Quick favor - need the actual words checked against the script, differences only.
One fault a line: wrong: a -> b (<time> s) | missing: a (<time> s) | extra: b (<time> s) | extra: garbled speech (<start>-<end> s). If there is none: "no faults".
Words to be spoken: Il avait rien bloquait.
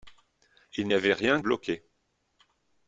no faults